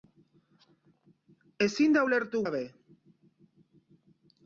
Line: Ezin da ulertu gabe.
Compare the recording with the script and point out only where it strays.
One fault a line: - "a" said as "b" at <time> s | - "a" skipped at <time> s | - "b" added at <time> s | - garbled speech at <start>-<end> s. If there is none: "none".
none